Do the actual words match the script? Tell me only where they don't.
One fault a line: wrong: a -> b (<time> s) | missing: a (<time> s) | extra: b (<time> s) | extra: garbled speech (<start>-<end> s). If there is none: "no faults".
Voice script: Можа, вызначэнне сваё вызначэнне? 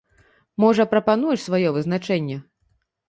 wrong: вызначэнне -> прапануеш (0.9 s)